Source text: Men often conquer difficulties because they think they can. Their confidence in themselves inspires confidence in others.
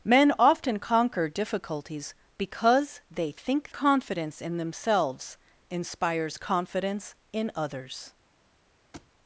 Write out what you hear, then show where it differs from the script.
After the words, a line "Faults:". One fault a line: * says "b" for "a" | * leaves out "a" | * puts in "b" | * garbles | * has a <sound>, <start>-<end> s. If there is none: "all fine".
Men often conquer difficulties because they think confidence in themselves inspires confidence in others.
Faults:
* leaves out "they can Their"
* has a thud, 8.9-9.1 s